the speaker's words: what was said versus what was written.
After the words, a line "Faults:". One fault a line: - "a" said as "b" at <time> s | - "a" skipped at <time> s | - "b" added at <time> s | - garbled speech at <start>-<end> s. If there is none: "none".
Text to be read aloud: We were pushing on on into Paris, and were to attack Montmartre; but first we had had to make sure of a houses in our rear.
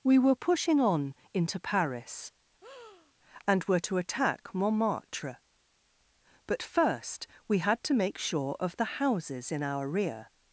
We were pushing on into Paris, and were to attack Montmartre; but first we had to make sure of the houses in our rear.
Faults:
- "on" skipped at 1.1 s
- "had" skipped at 7.8 s
- "a" said as "the" at 8.8 s